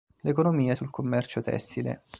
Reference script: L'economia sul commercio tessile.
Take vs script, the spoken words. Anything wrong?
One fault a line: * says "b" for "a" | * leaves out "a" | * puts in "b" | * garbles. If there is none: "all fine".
all fine